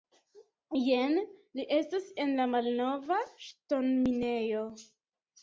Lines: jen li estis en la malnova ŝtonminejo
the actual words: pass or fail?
fail